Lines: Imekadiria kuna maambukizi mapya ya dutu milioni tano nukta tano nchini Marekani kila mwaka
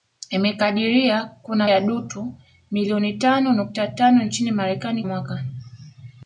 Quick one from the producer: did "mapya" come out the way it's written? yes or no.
no